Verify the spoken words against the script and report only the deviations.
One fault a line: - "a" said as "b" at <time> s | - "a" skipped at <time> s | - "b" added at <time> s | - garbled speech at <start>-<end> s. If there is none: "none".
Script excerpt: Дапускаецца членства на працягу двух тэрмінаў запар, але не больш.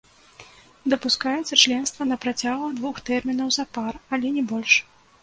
none